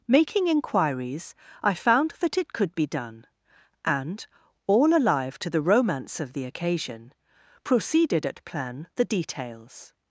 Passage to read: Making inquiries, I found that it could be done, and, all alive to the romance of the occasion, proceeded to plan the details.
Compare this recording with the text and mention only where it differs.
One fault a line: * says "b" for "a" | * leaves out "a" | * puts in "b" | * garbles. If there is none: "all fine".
* says "at" for "to"